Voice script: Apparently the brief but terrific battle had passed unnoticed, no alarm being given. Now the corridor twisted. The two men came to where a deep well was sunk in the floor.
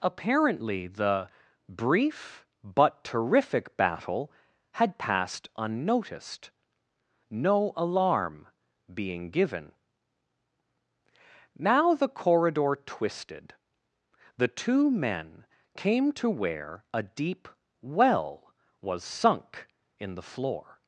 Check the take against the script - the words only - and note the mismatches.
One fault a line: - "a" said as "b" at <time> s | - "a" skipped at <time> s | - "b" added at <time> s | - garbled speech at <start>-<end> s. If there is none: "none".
none